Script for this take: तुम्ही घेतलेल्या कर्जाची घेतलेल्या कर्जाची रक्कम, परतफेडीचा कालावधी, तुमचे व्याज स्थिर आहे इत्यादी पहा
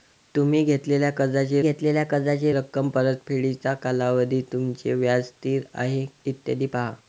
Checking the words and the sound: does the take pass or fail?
pass